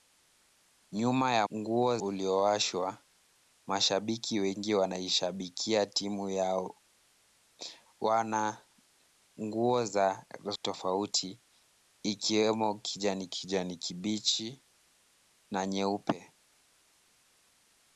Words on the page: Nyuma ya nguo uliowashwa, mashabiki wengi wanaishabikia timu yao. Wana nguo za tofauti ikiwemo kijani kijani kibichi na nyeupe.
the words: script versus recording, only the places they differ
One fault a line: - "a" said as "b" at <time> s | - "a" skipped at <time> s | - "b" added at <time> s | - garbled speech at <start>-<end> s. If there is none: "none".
none